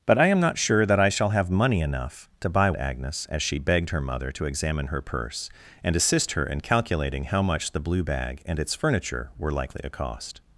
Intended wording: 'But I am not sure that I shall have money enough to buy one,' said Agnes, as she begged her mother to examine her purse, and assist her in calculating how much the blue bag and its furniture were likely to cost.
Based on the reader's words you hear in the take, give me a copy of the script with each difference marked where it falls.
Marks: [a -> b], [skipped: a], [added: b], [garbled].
'But I am not sure that I shall have money enough to buy [skipped: one,' said] Agnes, as she begged her mother to examine her purse, and assist her in calculating how much the blue bag and its furniture were likely to cost.